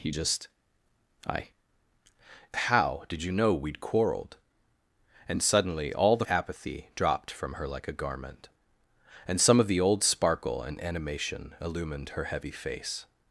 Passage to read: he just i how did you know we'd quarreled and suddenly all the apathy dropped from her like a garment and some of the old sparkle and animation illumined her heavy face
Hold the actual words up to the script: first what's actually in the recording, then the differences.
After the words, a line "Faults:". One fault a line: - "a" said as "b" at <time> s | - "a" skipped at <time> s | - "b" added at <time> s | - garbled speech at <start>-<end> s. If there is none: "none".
he just i how did you know we'd quarreled and suddenly all the apathy dropped from her like a garment and some of the old sparkle and animation illumined her heavy face
Faults:
none